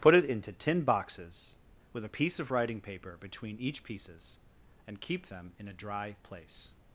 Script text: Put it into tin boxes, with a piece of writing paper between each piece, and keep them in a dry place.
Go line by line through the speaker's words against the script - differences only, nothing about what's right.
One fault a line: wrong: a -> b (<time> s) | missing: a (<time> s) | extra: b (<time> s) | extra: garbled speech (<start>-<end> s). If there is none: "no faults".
wrong: piece -> pieces (3.8 s)